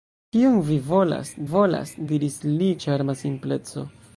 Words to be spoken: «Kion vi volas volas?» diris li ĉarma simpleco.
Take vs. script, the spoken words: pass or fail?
pass